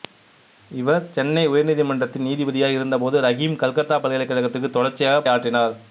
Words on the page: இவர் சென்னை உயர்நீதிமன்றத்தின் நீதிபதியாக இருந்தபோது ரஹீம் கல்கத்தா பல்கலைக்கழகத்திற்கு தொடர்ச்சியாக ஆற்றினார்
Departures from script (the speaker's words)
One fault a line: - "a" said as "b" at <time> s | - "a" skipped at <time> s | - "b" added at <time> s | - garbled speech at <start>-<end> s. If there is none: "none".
none